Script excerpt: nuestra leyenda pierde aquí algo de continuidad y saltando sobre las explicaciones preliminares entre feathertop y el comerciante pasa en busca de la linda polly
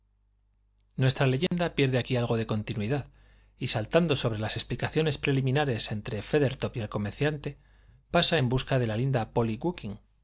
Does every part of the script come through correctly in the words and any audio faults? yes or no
no